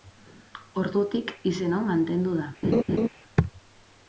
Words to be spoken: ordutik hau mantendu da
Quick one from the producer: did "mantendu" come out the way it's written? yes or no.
yes